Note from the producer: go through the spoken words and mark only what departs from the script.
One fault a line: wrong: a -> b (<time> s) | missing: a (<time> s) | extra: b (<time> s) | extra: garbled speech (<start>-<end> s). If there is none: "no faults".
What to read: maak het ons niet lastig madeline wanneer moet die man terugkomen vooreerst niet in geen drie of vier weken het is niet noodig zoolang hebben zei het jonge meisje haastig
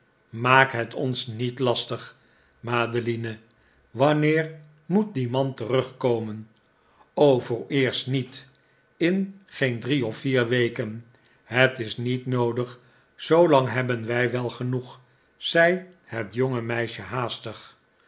extra: wij wel genoeg (14.1 s)